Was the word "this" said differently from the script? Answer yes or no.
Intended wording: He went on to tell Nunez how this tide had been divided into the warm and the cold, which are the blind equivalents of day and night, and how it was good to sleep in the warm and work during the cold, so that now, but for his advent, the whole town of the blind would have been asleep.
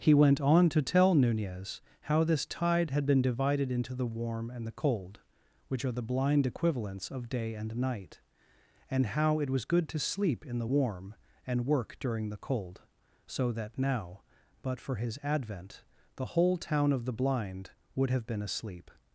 no